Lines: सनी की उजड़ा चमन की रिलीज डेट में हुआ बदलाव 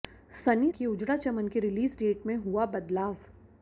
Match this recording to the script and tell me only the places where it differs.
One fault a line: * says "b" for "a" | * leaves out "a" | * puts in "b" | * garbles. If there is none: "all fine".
all fine